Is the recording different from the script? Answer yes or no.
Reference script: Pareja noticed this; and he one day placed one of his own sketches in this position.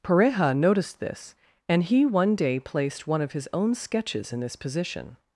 no